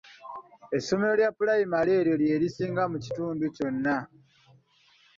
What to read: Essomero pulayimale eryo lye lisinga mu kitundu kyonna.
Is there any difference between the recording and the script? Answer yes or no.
yes